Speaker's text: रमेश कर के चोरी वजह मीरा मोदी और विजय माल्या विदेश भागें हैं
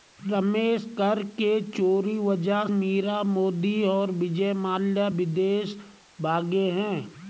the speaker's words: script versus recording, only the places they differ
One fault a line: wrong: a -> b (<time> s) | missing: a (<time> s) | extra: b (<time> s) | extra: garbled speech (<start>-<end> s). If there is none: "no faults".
no faults